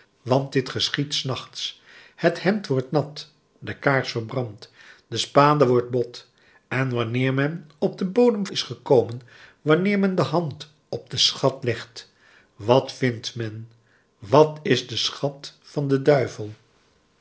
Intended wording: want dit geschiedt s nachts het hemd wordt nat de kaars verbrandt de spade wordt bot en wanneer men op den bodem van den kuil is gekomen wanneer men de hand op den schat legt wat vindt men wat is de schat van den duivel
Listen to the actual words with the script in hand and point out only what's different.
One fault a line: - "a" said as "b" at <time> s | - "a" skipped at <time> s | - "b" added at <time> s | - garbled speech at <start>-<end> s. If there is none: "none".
- "van den kuil" skipped at 8.5 s